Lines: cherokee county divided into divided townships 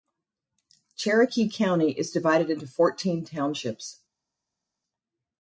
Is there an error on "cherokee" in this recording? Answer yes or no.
no